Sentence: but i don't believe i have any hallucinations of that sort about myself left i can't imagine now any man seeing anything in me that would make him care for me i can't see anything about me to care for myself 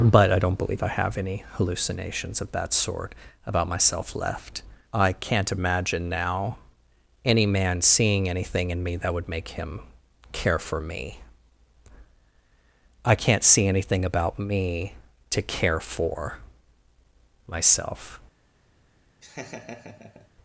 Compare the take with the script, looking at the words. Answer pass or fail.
pass